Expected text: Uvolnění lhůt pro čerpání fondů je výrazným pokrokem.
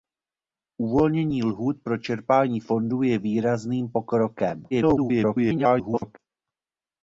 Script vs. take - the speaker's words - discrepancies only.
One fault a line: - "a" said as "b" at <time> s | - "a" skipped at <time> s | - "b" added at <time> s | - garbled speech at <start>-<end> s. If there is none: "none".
- garbled speech at 4.7-6.2 s